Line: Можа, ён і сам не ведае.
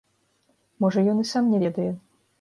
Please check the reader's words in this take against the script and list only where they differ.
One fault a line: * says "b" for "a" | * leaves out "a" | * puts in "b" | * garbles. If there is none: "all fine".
all fine